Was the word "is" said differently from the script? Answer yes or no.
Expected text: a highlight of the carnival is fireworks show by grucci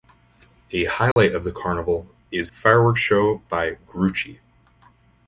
no